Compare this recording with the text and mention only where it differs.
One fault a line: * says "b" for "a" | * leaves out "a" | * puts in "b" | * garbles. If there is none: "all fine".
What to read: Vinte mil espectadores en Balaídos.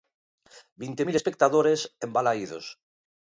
all fine